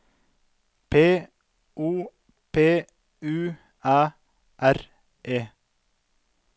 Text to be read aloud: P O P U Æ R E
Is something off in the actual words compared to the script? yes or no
no